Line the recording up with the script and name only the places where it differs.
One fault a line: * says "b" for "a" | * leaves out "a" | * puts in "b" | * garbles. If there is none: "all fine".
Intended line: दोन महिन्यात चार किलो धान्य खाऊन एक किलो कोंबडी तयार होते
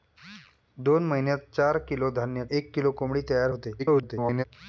* leaves out "खाऊन"
* garbles